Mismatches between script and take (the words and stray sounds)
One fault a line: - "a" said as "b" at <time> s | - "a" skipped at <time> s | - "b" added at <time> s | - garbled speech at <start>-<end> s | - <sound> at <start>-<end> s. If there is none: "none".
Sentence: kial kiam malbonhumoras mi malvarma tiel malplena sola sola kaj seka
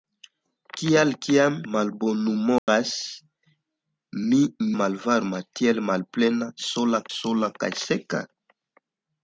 - dropout at 2.6-2.7 s